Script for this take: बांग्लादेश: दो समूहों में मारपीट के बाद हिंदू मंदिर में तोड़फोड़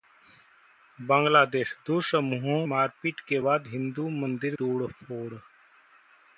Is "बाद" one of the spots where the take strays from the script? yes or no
no